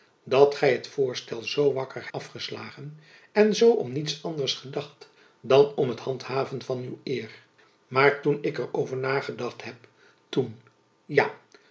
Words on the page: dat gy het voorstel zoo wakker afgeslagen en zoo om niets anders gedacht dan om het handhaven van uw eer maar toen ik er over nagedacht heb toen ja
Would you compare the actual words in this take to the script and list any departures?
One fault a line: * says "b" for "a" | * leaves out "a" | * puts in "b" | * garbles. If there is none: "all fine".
all fine